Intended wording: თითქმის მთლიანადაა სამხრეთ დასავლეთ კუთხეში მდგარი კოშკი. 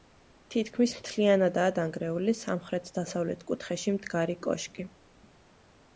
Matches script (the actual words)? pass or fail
fail